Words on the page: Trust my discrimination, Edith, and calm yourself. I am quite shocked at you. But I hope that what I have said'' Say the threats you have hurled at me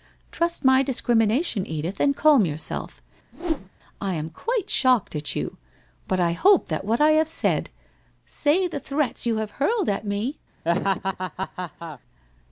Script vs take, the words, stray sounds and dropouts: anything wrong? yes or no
yes